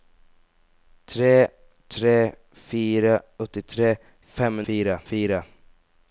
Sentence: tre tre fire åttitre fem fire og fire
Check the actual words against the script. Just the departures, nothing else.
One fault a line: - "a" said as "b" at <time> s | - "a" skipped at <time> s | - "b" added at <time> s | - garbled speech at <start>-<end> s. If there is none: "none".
none